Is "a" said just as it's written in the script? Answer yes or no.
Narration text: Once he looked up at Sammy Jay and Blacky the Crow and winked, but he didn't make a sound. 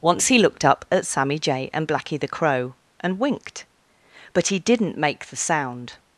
no